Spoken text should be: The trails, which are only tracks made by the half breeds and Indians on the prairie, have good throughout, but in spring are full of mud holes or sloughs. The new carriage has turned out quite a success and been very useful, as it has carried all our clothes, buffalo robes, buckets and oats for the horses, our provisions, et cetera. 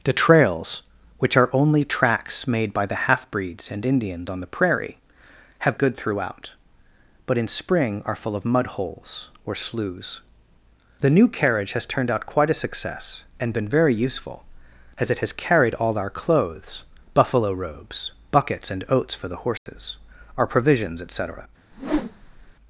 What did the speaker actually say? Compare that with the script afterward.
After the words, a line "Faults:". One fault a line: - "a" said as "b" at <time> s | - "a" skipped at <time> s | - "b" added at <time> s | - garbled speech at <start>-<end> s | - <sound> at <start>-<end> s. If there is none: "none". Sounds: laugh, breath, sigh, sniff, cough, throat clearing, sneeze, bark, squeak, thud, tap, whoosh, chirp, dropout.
The trails, which are only tracks made by the half breeds and Indians on the prairie, have good throughout, but in spring are full of mud holes or sloughs. The new carriage has turned out quite a success and been very useful, as it has carried all our clothes, buffalo robes, buckets and oats for the horses, our provisions, et cetera.
Faults:
- dropout at 19.6-19.7 s
- whoosh at 21.7-22.5 s